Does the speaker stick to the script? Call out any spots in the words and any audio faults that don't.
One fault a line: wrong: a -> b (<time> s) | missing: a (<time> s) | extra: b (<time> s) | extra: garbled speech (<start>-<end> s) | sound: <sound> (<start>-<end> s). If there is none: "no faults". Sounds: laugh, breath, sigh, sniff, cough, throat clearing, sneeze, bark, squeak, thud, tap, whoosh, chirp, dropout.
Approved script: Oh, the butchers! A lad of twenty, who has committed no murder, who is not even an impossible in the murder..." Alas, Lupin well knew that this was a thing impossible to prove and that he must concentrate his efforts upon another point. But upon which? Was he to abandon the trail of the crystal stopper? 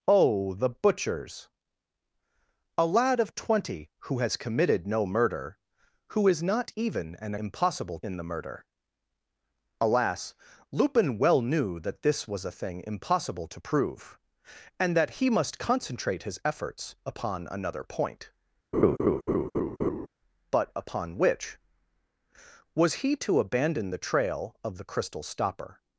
sound: laugh (18.7-20.1 s)